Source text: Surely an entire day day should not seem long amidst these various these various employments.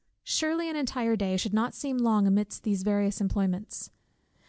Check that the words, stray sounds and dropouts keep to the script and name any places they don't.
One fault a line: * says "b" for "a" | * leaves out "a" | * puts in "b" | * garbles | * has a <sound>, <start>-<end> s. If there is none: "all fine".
* leaves out "day"
* leaves out "these various"